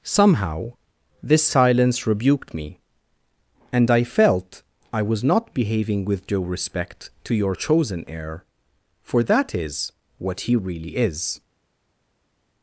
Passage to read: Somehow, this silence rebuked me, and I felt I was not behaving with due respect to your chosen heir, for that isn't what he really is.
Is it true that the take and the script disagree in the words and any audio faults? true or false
true